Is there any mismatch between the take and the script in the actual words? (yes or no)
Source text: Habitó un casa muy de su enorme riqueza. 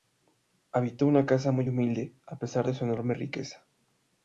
yes